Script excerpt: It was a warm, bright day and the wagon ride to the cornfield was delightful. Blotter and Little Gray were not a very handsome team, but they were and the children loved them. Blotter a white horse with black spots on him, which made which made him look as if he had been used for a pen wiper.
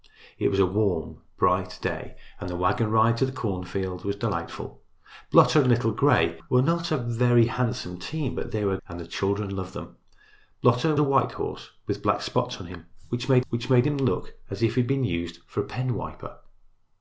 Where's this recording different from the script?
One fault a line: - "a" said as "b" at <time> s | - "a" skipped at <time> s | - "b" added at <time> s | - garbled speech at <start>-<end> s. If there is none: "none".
none